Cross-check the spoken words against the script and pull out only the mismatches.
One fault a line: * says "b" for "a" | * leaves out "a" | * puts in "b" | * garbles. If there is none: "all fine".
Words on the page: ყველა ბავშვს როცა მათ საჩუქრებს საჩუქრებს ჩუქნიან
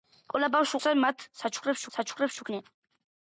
all fine